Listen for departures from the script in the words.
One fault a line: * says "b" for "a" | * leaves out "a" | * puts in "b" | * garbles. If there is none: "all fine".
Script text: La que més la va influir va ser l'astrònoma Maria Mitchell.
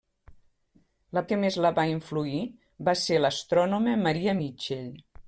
all fine